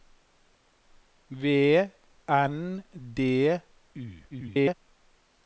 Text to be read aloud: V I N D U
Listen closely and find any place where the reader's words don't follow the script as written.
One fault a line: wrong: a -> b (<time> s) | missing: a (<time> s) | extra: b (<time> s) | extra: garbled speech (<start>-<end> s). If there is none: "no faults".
missing: I (1.9 s)
extra: garbled speech (4.3-4.7 s)